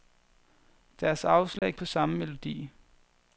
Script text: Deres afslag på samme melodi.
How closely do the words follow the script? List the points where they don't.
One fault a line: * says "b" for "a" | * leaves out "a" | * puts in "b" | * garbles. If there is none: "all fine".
all fine